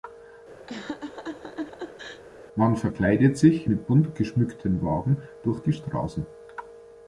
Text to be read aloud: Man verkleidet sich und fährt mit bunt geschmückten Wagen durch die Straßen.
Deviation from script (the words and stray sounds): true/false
true